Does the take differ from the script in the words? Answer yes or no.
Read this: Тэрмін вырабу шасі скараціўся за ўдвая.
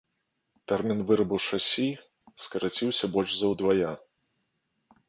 yes